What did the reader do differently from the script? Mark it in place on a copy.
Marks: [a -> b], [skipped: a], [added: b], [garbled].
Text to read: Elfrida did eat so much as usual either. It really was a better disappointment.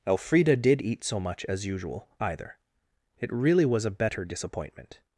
Elfrida did eat so much as usual either. It really was a better disappointment.